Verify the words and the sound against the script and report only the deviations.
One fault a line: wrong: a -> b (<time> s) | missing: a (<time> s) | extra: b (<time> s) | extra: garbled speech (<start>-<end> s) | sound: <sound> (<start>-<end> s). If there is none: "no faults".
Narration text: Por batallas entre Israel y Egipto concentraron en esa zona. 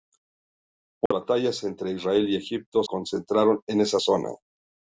sound: dropout (1.1-1.1 s)